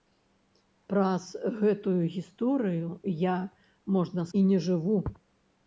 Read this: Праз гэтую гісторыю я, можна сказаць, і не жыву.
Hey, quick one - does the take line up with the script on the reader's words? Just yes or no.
no